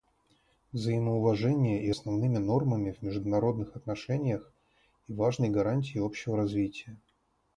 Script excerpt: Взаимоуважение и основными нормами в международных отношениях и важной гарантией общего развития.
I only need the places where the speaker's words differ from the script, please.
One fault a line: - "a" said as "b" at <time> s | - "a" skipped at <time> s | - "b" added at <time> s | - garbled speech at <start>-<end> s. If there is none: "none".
none